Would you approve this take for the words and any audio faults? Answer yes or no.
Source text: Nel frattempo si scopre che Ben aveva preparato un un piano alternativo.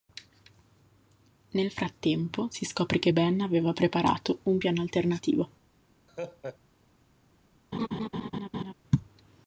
no